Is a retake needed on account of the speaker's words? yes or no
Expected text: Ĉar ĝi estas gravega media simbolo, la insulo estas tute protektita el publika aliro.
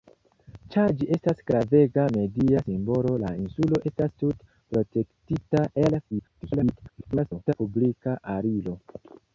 yes